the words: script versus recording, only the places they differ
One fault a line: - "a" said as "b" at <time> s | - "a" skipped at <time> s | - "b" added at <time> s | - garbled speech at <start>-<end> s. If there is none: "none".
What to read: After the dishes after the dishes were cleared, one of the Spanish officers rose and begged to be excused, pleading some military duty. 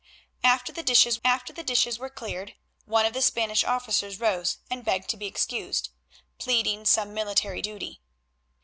none